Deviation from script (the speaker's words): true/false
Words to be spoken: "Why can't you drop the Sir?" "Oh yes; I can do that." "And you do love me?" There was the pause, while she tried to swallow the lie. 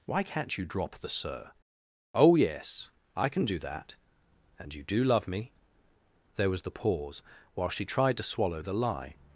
false